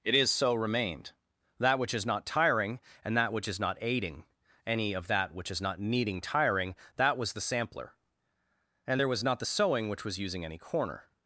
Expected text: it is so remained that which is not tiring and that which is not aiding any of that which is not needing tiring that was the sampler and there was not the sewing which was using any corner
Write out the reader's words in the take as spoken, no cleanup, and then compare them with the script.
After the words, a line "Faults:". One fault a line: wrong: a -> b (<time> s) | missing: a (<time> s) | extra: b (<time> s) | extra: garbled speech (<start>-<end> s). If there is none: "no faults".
it is so remained that which is not tiring and that which is not aiding any of that which is not needing tiring that was the sampler and there was not the sewing which was using any corner
Faults:
no faults